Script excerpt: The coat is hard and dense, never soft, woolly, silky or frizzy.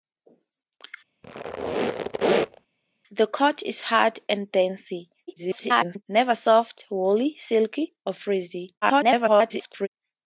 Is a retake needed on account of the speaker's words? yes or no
yes